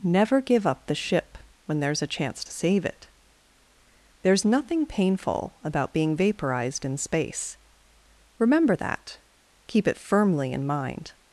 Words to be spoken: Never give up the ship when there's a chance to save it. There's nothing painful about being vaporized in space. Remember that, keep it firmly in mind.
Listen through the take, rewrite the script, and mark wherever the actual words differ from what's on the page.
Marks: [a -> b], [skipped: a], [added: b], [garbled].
Never give up the ship when there's a chance to save it. There's nothing painful about being vaporized in space. Remember that, keep it firmly in mind.